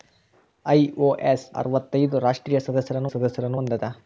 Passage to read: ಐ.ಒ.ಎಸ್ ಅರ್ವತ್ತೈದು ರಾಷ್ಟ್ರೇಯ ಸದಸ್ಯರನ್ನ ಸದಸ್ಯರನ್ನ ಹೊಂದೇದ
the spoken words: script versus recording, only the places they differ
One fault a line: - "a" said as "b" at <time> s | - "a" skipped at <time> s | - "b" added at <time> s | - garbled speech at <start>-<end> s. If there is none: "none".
none